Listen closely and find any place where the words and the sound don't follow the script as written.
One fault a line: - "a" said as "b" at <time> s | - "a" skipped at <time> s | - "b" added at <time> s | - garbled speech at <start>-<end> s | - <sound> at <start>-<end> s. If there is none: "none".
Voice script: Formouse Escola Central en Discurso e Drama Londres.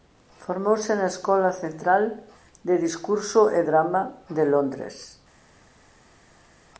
- "na" added at 0.9 s
- "en" said as "de" at 2.6 s
- "de" added at 4.3 s